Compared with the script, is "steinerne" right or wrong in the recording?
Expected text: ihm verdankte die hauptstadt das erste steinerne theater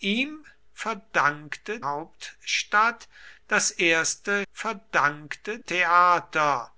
wrong